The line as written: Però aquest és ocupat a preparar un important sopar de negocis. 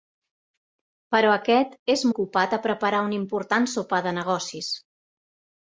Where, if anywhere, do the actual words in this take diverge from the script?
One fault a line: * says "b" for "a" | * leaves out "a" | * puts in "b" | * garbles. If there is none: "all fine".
all fine